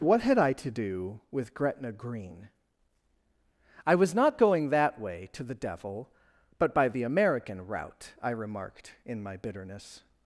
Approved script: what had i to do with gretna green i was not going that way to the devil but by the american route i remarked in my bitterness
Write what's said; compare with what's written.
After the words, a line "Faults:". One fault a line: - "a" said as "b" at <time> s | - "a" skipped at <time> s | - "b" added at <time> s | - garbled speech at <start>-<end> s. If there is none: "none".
what had i to do with gretna green i was not going that way to the devil but by the american route i remarked in my bitterness
Faults:
none